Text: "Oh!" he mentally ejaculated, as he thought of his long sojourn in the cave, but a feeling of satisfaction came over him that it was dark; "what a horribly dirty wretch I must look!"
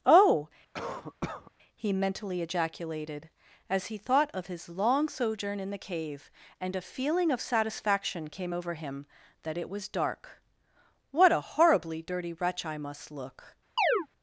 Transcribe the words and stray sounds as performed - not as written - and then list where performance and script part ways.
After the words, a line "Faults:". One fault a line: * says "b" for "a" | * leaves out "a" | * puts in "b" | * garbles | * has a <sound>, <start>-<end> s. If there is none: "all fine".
"Oh!" he mentally ejaculated, as he thought of his long sojourn in the cave, and a feeling of satisfaction came over him that it was dark; "what a horribly dirty wretch I must look!"
Faults:
* has a cough, 0.7-1.5 s
* says "and" for "but"
* has a chirp, 13.8-14.1 s